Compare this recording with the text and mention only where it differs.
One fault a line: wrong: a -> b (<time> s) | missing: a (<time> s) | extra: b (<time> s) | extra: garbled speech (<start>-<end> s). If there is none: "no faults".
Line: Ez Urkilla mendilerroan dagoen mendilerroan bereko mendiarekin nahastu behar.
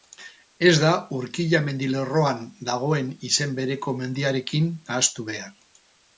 extra: da (0.8 s)
wrong: mendilerroan -> izen (3.3 s)